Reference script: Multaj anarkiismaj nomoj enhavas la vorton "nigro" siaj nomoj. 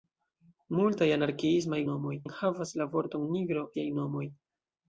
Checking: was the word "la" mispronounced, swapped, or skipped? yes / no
no